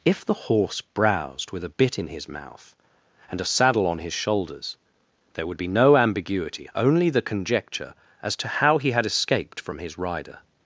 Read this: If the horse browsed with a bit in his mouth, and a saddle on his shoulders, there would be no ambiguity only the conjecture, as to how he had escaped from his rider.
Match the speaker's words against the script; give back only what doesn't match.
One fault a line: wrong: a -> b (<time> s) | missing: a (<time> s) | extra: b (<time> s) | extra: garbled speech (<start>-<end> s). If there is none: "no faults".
no faults